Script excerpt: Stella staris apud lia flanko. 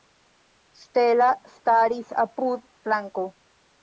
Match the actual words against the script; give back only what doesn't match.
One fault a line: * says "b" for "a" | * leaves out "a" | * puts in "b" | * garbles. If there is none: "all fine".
* leaves out "lia"